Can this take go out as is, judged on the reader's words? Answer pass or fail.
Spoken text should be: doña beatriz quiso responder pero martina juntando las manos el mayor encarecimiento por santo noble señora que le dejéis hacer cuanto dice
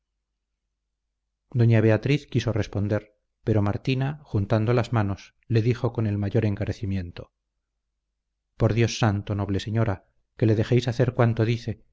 fail